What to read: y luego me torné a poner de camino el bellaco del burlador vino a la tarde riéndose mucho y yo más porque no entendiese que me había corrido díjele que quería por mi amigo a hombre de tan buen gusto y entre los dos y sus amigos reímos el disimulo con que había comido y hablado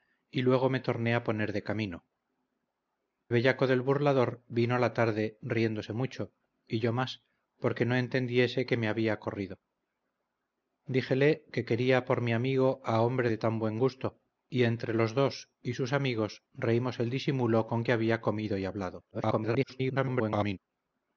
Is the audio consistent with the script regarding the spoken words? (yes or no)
no